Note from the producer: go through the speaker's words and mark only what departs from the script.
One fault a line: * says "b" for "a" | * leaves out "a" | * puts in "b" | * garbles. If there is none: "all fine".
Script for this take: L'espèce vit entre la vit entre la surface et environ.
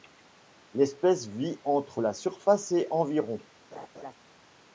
* leaves out "vit entre la"